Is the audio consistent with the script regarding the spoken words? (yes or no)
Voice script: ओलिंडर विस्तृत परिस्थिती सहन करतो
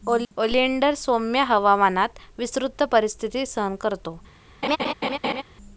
no